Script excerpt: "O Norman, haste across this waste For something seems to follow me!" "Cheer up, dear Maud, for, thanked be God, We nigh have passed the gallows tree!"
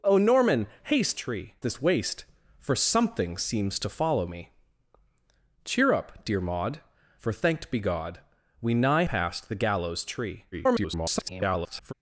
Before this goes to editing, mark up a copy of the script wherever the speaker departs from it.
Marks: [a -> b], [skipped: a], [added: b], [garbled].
"O Norman, haste [across -> tree] this waste For something seems to follow me!" "Cheer up, dear Maud, for, thanked be God, We nigh [skipped: have] passed the gallows tree!" [garbled]